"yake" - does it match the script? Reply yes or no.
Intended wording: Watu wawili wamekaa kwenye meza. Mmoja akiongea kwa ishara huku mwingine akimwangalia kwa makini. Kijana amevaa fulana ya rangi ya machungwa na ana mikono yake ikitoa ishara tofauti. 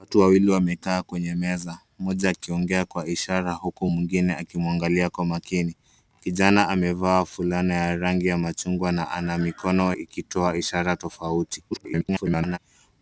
no